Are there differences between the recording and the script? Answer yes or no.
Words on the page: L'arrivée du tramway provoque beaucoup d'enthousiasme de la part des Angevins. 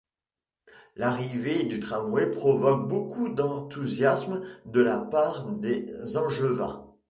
no